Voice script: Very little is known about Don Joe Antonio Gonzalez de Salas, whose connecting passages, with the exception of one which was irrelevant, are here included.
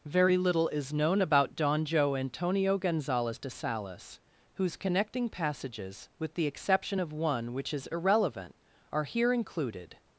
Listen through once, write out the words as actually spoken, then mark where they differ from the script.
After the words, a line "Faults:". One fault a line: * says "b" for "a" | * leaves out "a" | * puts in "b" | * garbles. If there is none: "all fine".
Very little is known about Don Joe Antonio Gonzalez de Salas, whose connecting passages, with the exception of one which is irrelevant, are here included.
Faults:
* says "is" for "was"